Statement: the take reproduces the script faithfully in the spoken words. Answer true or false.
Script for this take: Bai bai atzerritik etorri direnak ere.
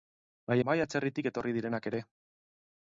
true